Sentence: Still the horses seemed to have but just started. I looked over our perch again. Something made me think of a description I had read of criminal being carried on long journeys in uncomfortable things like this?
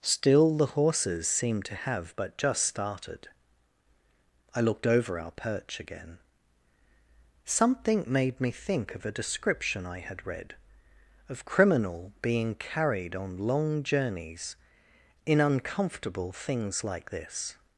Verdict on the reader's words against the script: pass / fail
pass